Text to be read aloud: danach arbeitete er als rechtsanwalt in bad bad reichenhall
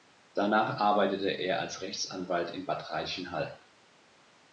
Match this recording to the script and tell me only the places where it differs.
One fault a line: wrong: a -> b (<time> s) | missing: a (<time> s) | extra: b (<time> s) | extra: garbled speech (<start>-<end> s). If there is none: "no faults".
missing: bad (2.9 s)